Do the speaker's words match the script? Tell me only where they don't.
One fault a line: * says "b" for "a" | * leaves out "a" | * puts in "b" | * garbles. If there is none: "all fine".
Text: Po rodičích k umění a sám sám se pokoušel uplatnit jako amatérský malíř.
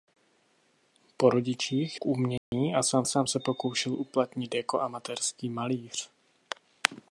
all fine